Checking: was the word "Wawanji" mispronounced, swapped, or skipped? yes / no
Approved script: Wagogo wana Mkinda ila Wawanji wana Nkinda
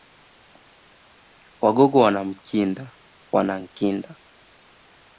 yes